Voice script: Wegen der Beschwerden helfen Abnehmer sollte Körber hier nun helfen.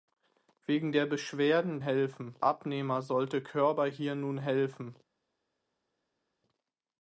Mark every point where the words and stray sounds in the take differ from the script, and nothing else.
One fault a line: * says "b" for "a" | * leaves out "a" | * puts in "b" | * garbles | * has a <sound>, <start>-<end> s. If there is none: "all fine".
all fine